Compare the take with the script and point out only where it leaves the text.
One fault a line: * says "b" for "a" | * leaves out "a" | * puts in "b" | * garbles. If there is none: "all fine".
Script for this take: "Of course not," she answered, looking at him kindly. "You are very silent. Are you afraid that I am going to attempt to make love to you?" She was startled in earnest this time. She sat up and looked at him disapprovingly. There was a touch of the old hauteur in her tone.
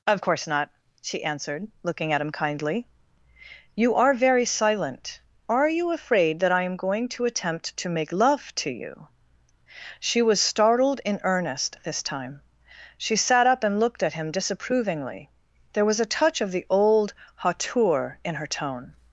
all fine